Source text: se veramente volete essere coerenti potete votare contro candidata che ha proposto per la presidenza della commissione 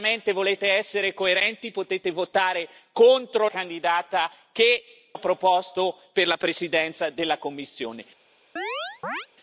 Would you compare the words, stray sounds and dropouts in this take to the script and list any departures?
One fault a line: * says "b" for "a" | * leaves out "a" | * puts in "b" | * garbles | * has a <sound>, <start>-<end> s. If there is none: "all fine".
* has a chirp, 8.6-9.3 s